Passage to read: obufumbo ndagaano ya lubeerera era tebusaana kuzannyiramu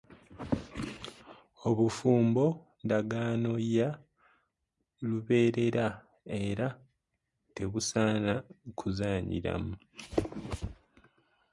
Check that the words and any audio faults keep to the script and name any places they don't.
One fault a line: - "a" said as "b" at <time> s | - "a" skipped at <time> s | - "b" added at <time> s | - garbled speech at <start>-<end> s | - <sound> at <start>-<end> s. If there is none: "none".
none